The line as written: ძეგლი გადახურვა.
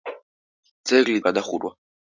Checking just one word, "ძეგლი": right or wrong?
right